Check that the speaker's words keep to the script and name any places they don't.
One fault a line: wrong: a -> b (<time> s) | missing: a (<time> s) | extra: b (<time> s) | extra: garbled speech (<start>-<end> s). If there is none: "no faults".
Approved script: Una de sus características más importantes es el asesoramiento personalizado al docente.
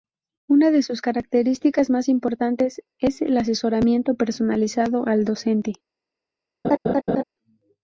no faults